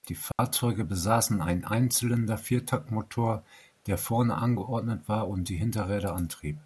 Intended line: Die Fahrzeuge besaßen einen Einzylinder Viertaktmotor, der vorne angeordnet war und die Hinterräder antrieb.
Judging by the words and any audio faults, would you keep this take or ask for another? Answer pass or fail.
fail